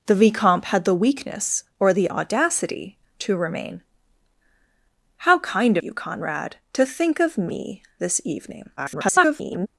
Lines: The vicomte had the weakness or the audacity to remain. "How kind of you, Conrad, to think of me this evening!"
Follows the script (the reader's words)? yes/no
no